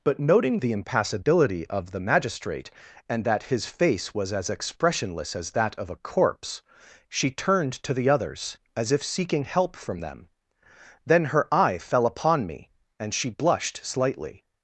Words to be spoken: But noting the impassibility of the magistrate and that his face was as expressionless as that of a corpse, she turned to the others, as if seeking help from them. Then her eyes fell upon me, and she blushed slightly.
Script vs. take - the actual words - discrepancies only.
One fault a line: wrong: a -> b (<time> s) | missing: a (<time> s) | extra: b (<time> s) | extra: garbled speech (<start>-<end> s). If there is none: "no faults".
wrong: eyes -> eye (11.5 s)